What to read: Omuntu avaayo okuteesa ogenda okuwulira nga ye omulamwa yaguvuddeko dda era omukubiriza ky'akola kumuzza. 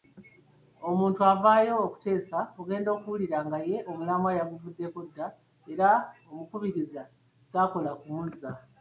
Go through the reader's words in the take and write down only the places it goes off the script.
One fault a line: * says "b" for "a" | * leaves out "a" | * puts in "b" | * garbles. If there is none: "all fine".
all fine